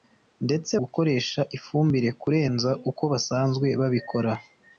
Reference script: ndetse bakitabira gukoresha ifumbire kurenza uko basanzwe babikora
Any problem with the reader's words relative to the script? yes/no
yes